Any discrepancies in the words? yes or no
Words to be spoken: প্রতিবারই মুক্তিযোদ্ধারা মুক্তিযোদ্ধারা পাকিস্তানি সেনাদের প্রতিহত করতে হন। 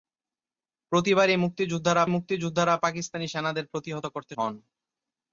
no